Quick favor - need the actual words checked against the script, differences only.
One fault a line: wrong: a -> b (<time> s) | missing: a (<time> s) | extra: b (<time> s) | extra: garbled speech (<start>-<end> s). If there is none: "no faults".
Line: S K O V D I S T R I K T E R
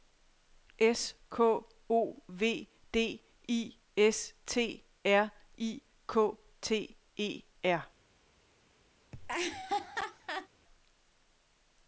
no faults